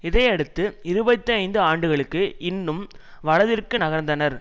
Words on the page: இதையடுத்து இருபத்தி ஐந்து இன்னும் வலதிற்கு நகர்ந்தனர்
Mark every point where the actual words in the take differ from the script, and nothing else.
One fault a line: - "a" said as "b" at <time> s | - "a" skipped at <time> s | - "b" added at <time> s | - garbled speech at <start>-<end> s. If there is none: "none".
- "ஆண்டுகளுக்கு" added at 1.6 s